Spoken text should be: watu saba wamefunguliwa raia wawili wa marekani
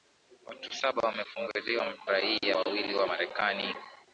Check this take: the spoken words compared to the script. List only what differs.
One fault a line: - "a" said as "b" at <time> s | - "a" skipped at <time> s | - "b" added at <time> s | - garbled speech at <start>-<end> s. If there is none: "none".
none